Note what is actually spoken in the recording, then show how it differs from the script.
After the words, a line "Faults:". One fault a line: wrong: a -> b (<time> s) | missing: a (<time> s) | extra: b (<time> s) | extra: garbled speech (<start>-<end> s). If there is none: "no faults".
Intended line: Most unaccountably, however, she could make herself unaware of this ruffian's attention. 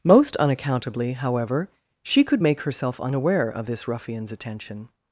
Most unaccountably, however, she could make herself unaware of this ruffian's attention.
Faults:
no faults